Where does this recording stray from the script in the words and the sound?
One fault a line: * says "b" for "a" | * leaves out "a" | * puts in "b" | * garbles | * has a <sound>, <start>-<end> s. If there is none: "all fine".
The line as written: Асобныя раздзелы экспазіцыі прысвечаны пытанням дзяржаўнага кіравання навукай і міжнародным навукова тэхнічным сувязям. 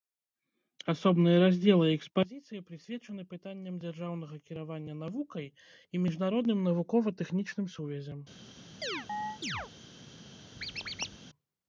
* has a chirp, 8.8-9.7 s
* has a squeak, 10.6-11.2 s